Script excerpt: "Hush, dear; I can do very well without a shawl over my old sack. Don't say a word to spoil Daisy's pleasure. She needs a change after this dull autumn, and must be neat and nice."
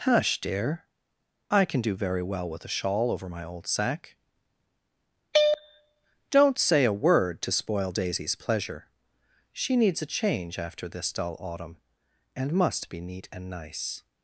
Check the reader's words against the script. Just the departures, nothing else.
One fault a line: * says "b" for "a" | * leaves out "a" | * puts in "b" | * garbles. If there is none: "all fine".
* says "with" for "without"